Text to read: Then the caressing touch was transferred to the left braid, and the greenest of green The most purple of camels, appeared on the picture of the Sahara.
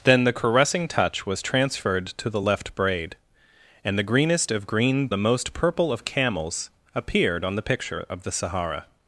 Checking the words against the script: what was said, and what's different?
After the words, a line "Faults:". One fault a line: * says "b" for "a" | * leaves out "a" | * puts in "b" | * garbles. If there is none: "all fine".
Then the caressing touch was transferred to the left braid, and the greenest of green The most purple of camels, appeared on the picture of the Sahara.
Faults:
all fine